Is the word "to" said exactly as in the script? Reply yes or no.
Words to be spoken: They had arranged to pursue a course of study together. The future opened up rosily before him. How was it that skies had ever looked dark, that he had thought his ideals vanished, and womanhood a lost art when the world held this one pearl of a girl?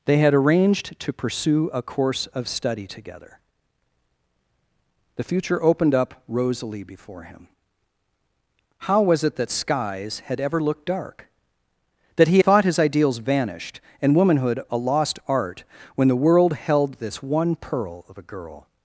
yes